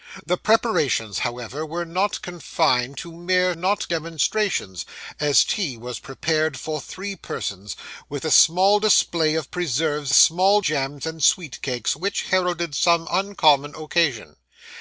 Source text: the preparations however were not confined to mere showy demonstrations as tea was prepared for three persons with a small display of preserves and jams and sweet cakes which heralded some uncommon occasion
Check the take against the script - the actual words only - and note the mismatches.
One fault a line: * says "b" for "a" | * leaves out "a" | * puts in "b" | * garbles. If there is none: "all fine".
* says "not" for "showy"
* says "small" for "and"